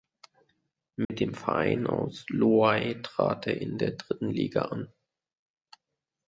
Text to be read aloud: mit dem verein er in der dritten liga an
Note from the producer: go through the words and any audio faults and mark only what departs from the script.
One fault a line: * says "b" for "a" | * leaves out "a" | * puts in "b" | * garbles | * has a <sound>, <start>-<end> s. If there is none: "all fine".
* has a dropout, 1.0-1.1 s
* puts in "aus loei trat"